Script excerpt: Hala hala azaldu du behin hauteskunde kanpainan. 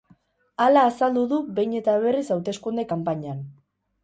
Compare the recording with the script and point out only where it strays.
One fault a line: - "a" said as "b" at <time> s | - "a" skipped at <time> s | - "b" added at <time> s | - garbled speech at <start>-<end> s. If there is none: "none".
- "hala" skipped at 0.8 s
- "eta berriz" added at 1.8 s